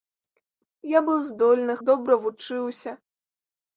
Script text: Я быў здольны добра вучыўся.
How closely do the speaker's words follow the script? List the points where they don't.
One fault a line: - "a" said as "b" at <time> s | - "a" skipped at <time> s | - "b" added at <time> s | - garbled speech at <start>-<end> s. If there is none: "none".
none